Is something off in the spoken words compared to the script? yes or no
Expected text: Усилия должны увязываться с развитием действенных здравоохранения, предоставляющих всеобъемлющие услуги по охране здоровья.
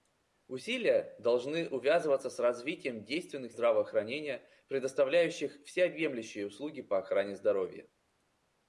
no